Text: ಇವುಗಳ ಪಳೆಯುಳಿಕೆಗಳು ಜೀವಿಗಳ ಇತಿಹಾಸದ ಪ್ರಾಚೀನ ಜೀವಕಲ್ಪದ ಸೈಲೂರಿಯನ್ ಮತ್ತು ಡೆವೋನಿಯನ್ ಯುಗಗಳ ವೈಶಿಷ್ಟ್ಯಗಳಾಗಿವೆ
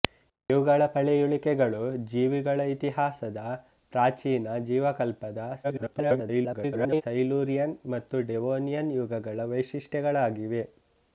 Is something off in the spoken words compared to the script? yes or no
yes